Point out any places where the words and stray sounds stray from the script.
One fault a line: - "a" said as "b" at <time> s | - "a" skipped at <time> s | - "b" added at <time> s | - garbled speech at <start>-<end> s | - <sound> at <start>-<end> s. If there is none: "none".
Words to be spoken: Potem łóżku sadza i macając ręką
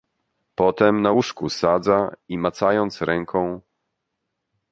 - "na" added at 1.0 s